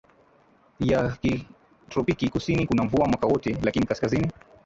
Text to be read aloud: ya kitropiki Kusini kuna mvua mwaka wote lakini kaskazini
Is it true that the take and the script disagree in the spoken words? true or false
false